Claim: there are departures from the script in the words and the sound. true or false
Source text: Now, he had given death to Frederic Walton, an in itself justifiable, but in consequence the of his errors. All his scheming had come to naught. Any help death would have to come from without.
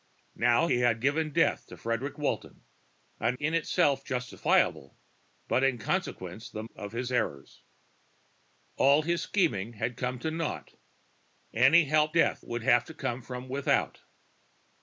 false